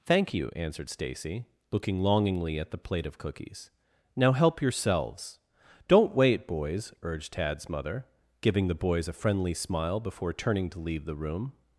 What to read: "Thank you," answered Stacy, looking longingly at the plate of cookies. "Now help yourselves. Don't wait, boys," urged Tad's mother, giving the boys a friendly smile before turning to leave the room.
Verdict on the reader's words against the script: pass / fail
pass